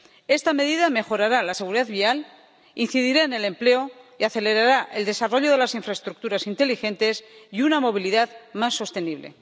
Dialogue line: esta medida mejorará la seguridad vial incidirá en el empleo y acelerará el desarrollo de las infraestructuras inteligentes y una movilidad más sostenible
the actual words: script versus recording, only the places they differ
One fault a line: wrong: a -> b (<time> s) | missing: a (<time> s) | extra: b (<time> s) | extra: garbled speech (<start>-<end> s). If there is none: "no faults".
no faults